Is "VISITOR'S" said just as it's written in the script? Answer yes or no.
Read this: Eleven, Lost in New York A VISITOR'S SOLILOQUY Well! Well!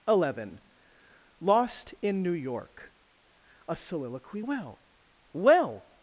no